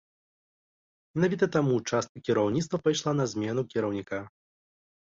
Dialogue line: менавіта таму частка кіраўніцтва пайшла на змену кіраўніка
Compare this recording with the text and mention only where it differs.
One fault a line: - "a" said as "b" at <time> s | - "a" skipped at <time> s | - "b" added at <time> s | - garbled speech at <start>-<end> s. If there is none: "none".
none